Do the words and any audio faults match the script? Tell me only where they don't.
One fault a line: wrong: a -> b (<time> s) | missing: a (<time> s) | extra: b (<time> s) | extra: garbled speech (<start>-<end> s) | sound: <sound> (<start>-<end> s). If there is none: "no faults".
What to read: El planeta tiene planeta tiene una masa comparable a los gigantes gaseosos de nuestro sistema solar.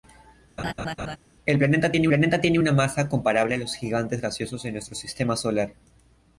sound: laugh (0.6-1.2 s)